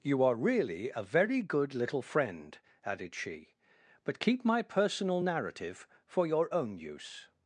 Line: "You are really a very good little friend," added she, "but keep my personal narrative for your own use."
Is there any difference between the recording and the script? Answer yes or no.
no